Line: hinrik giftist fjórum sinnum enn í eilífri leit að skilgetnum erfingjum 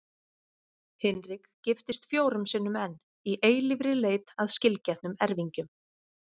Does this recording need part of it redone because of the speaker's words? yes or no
no